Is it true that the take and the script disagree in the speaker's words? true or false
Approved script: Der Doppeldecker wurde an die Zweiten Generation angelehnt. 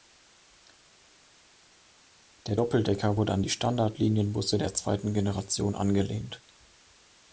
true